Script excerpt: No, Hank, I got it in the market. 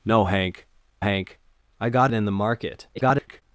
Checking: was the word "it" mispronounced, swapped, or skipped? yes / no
yes